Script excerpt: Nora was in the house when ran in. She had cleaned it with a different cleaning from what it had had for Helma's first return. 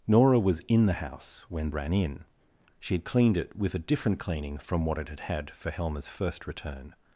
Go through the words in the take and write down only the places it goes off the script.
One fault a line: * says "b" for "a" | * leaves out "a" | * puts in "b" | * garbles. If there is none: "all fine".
all fine